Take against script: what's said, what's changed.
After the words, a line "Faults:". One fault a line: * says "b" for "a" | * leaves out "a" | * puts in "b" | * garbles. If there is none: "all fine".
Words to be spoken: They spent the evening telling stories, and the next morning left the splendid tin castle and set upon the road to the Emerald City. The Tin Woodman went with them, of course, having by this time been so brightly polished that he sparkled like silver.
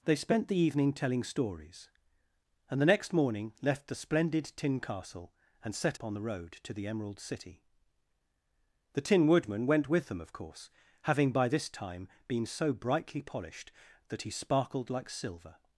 They spent the evening telling stories, and the next morning left the splendid tin castle and set upon the road to the Emerald City. The Tin Woodman went with them, of course, having by this time been so brightly polished that he sparkled like silver.
Faults:
all fine